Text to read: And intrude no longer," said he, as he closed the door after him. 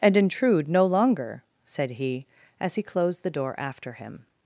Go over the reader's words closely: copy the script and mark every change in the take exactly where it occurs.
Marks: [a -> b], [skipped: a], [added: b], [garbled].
And intrude no longer," said he, as he closed the door after him.